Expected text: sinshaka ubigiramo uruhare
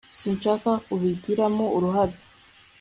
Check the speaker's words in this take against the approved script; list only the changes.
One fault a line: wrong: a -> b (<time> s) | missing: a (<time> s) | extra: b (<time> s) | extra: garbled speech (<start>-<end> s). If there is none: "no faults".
no faults